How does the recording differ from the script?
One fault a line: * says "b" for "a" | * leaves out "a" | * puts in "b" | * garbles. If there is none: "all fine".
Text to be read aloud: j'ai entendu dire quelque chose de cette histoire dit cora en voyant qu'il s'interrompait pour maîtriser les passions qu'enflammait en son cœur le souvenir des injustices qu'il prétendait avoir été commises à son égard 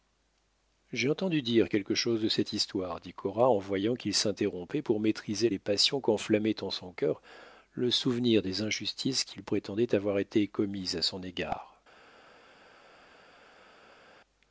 all fine